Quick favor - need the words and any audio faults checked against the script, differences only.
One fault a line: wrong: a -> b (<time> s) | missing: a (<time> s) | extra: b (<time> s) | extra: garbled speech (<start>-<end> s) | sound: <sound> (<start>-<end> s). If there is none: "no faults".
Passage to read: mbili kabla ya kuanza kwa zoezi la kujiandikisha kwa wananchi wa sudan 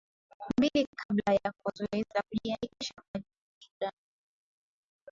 missing: kuanza (1.5 s)
missing: kwa wananchi wa (2.9 s)